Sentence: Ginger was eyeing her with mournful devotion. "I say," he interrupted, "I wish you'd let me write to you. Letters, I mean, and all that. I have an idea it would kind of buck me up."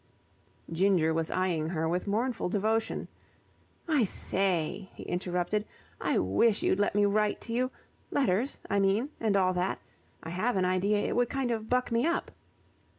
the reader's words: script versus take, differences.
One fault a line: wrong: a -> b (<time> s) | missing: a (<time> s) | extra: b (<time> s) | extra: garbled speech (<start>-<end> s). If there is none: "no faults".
no faults